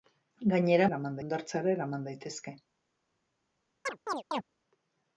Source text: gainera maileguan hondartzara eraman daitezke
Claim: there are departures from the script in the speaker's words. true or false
true